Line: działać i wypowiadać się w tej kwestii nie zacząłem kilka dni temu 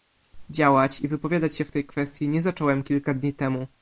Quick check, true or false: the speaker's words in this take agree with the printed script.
true